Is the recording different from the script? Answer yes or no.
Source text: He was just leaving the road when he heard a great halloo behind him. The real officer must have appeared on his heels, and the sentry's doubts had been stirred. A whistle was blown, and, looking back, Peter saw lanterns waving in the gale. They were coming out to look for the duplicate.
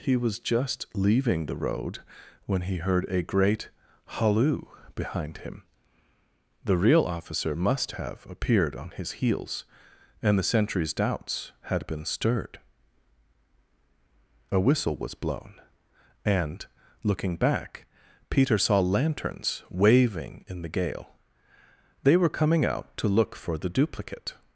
no